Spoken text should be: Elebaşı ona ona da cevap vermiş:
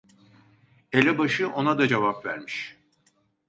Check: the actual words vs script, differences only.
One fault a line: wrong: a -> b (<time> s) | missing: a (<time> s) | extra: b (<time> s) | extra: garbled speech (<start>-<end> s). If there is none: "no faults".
missing: ona (1.8 s)